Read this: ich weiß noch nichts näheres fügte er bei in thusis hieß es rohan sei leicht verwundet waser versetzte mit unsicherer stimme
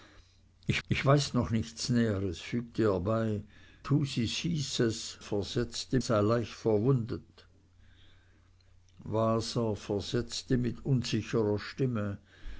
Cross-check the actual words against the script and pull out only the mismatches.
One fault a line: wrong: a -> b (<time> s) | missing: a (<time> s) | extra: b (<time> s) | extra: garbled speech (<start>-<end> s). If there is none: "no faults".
extra: ich (0.9 s)
missing: in (3.4 s)
wrong: rohan -> versetzte (5.2 s)